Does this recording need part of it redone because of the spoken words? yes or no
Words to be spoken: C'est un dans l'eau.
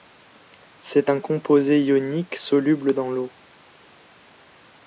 yes